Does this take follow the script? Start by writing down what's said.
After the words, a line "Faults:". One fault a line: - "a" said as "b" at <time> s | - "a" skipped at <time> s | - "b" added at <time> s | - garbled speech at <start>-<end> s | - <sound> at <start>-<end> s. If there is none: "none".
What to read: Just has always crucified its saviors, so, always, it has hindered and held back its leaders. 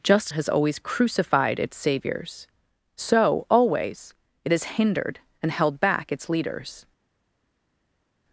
Just has always crucified its saviors, so, always, it has hindered and held back its leaders.
Faults:
none